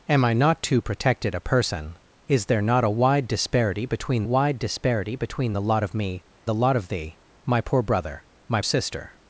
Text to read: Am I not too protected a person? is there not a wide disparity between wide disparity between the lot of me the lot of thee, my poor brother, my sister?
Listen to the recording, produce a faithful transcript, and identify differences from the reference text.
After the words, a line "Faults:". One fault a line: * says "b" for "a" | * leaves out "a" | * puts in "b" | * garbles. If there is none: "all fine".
Am I not too protected a person? is there not a wide disparity between wide disparity between the lot of me the lot of thee, my poor brother, my sister?
Faults:
all fine